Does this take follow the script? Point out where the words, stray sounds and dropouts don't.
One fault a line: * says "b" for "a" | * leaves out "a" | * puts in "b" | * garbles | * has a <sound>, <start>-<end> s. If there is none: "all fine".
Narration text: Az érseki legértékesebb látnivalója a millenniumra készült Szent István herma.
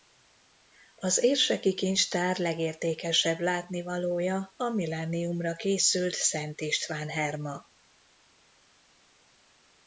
* puts in "kincstár"